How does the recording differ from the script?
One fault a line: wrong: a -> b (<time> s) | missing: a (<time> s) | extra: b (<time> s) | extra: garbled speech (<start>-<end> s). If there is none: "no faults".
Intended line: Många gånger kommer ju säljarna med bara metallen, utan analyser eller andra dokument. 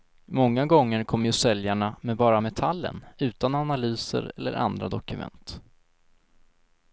no faults